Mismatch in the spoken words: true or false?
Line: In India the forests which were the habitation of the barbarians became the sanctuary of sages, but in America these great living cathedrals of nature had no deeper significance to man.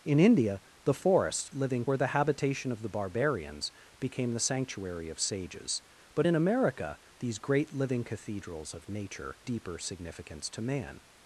true